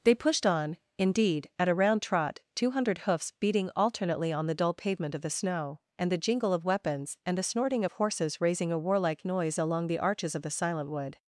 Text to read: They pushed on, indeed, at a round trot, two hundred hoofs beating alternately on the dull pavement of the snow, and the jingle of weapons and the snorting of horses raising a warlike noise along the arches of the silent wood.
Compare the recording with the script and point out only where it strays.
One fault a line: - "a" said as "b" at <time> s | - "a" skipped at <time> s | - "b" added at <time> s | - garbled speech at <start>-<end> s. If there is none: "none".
none